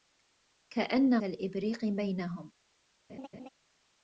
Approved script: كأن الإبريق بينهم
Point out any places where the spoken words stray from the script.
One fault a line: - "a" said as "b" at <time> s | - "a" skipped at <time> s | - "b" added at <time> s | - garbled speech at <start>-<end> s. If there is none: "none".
none